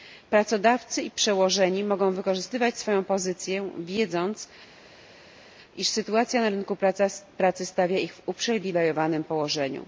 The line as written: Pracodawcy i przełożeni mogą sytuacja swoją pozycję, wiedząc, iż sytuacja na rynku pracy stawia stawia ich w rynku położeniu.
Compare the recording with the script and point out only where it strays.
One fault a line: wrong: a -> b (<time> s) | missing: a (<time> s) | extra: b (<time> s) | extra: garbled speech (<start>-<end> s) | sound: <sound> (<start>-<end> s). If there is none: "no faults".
wrong: sytuacja -> wykorzystywać (2.1 s)
missing: stawia (8.0 s)
wrong: rynku -> uprzywilejowanym (8.2 s)